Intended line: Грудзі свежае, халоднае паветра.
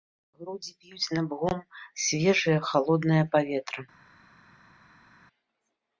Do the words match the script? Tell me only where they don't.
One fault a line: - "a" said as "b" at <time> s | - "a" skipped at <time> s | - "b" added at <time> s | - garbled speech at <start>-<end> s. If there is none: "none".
- "п'юць набгом" added at 0.8 s